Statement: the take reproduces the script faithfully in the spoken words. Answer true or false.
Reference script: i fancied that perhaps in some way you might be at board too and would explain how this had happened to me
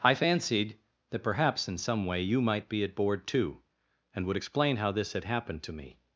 true